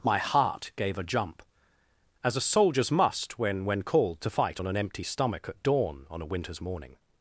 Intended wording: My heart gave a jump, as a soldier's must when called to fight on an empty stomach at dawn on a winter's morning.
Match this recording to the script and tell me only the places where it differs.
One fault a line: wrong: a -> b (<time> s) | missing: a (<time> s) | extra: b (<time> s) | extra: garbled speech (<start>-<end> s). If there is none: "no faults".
extra: when (3.6 s)